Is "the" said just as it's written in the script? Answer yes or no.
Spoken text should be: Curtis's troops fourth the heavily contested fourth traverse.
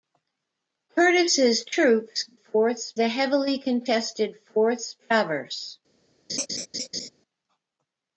yes